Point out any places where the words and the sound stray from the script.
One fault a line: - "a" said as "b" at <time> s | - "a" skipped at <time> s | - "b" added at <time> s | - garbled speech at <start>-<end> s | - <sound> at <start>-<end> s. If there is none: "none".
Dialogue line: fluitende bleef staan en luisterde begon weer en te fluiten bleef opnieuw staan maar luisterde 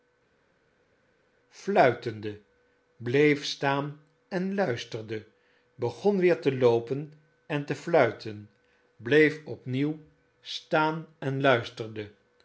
- "te loopen" added at 6.4 s
- "maar" said as "en" at 11.2 s